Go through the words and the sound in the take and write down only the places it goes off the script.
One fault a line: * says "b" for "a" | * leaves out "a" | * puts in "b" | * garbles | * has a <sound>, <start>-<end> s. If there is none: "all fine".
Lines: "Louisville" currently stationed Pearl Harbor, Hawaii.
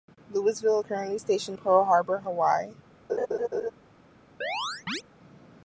* has a laugh, 3.1-3.7 s
* has a chirp, 4.4-5.0 s